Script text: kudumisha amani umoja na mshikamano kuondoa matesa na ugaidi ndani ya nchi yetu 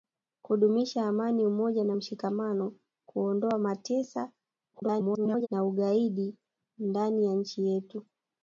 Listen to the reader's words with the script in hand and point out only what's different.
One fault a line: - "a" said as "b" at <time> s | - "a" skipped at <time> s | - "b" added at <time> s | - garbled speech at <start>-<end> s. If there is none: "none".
- garbled speech at 4.7-5.5 s